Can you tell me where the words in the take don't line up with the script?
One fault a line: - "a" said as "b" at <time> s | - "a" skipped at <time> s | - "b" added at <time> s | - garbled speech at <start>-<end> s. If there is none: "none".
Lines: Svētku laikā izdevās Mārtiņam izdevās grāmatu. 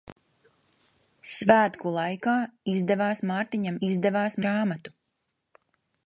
none